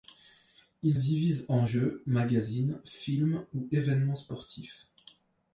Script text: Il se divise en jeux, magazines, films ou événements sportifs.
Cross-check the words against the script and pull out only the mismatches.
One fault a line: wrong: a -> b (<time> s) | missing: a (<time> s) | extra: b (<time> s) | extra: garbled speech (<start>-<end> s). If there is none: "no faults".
missing: se (1.0 s)